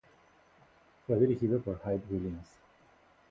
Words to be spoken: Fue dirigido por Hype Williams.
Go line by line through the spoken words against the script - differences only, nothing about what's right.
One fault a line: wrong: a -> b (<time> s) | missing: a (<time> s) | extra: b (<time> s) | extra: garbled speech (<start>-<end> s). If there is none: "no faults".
no faults